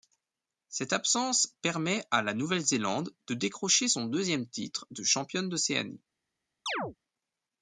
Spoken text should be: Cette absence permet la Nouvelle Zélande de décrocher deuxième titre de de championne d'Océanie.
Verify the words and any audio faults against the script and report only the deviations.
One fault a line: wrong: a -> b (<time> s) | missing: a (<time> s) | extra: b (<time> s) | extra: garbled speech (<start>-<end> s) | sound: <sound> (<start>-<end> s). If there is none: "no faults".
extra: à (2.1 s)
extra: son (3.9 s)
missing: de (5.0 s)
sound: chirp (6.7-7.0 s)